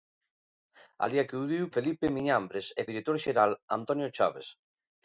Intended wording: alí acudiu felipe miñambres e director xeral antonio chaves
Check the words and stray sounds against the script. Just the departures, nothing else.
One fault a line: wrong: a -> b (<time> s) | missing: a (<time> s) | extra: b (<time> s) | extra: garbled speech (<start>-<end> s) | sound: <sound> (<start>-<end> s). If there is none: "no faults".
no faults